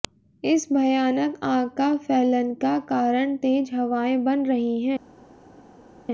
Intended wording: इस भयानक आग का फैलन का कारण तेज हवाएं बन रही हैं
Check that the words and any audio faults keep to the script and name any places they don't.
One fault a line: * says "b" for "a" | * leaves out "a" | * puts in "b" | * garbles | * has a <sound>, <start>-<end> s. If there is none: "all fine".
all fine